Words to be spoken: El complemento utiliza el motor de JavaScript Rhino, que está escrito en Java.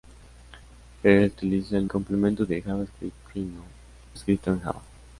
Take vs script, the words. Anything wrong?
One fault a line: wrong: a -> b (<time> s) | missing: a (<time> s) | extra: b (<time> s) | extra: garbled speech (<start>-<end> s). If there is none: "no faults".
missing: complemento (1.3 s)
wrong: motor -> complemento (1.8 s)
missing: que está (3.6 s)